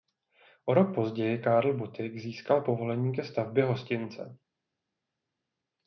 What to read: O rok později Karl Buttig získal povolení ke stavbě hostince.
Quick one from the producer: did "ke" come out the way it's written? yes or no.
yes